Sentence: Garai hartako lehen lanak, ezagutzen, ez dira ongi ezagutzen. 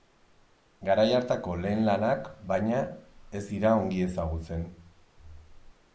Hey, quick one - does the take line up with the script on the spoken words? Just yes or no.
no